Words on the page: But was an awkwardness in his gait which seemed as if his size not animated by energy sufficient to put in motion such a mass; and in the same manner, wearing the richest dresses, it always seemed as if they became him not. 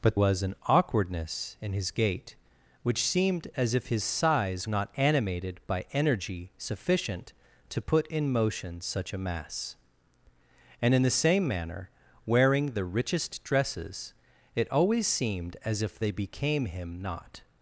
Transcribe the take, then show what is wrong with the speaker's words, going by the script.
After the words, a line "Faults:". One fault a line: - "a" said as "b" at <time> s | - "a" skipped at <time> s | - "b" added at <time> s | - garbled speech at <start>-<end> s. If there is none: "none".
But was an awkwardness in his gait which seemed as if his size not animated by energy sufficient to put in motion such a mass; and in the same manner, wearing the richest dresses, it always seemed as if they became him not.
Faults:
none